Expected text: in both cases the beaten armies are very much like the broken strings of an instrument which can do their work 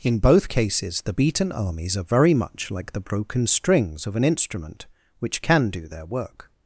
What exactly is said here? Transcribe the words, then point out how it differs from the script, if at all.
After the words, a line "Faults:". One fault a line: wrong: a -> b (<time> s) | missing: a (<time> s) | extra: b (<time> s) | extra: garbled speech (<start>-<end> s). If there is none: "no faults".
in both cases the beaten armies are very much like the broken strings of an instrument which can do their work
Faults:
no faults